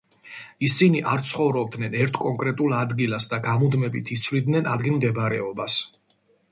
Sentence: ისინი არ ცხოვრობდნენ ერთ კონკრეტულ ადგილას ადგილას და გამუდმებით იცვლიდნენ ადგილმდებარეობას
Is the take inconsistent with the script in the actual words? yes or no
yes